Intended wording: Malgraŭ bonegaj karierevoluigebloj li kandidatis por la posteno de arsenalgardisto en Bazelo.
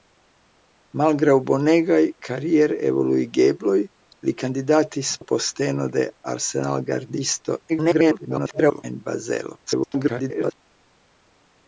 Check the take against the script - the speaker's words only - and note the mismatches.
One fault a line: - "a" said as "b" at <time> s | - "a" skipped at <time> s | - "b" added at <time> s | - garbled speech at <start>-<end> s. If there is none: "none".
- "por" skipped at 5.1 s
- garbled speech at 7.7-8.8 s
- garbled speech at 9.7-10.5 s